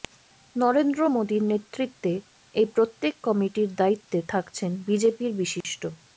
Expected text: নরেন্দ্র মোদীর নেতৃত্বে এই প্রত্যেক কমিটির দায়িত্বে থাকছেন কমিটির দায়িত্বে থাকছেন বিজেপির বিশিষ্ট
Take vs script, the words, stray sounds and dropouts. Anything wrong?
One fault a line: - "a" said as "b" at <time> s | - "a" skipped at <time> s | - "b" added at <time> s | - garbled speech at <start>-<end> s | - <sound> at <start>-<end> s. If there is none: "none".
- "কমিটির দায়িত্বে থাকছেন" skipped at 4.7 s
- dropout at 5.6-5.6 s